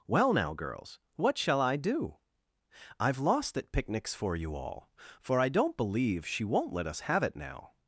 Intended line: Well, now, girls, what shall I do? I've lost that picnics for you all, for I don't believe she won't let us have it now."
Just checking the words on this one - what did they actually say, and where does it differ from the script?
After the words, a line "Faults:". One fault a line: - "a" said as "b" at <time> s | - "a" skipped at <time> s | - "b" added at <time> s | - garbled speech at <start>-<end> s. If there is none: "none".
Well, now, girls, what shall I do? I've lost that picnics for you all, for I don't believe she won't let us have it now."
Faults:
none